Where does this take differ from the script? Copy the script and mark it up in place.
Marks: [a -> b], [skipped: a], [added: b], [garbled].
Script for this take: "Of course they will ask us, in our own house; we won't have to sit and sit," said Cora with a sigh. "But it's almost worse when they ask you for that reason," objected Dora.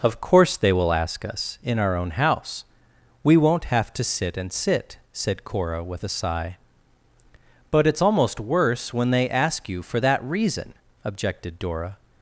"Of course they will ask us, in our own house; we won't have to sit and sit," said Cora with a sigh. "But it's almost worse when they ask you for that reason," objected Dora.